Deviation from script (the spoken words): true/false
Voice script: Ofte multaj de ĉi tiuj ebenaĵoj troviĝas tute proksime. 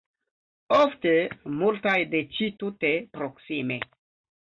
true